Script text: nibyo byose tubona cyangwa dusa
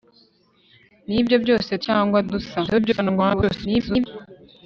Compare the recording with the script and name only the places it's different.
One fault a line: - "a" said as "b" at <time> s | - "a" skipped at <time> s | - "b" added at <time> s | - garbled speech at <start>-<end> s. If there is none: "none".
- "tubona" skipped at 1.7 s
- garbled speech at 2.7-4.1 s